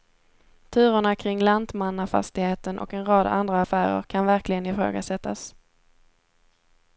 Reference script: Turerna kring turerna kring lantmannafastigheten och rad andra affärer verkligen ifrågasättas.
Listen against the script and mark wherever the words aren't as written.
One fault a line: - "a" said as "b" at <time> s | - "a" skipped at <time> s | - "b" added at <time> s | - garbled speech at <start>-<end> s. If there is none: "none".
- "turerna kring" skipped at 1.4 s
- "en" added at 2.9 s
- "kan" added at 4.0 s